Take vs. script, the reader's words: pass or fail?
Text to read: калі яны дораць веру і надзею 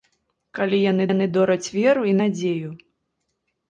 fail